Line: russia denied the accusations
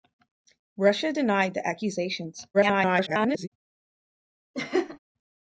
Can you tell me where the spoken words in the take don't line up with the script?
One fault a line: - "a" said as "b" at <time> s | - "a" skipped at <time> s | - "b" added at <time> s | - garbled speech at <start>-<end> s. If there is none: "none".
- garbled speech at 2.5-3.5 s